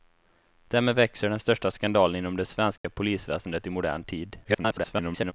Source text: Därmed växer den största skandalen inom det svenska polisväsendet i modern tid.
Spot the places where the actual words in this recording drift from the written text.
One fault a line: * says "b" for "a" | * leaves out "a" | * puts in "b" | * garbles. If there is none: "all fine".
* garbles